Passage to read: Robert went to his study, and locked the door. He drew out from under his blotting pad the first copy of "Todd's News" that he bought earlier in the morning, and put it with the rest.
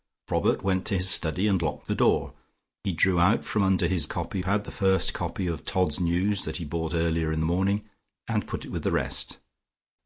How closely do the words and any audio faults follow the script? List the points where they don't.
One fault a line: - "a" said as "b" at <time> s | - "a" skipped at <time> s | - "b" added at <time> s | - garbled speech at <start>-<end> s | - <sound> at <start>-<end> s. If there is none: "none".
- "blotting" said as "copy" at 4.1 s